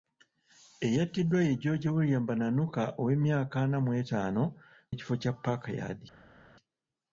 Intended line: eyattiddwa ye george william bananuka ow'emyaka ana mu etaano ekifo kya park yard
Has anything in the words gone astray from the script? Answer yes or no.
no